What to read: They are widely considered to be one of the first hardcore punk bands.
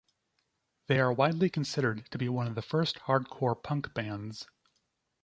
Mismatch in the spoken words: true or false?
false